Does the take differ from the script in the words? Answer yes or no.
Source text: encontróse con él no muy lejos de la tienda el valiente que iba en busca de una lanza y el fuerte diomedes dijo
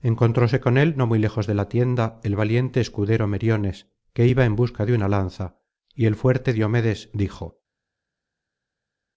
yes